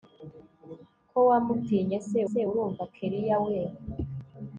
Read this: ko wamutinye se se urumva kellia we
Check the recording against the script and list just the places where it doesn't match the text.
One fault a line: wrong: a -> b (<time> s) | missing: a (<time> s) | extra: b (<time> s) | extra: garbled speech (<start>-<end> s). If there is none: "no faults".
no faults